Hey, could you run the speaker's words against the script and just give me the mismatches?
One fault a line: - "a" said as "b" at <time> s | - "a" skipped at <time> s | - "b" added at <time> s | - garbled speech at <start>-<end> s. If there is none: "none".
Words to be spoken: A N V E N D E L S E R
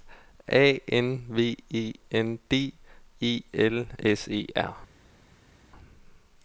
none